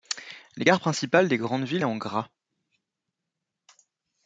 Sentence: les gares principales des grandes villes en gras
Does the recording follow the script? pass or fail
pass